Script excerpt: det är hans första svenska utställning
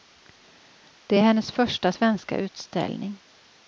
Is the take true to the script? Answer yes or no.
no